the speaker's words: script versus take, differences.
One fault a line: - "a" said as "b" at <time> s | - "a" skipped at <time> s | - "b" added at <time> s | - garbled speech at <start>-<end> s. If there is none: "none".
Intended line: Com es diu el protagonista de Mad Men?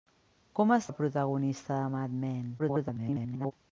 - "diu" skipped at 0.9 s
- garbled speech at 2.6-3.5 s